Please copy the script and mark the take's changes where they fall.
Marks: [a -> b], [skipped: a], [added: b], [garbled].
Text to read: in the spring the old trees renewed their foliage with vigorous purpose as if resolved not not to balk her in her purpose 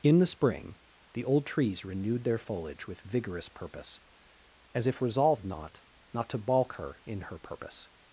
in the spring the old trees renewed their foliage with vigorous purpose as if resolved not not to balk her in her purpose